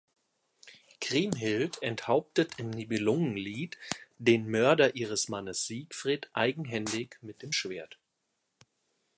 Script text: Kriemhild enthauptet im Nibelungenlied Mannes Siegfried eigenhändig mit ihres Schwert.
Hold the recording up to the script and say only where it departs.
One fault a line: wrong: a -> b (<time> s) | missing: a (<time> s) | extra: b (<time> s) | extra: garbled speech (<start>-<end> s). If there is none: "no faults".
extra: den Mörder ihres (4.2 s)
wrong: ihres -> dem (7.4 s)